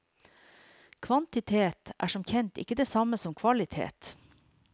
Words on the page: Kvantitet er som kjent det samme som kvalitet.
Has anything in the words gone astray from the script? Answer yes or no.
yes